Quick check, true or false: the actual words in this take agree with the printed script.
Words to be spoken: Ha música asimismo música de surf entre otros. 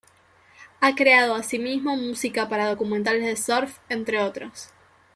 false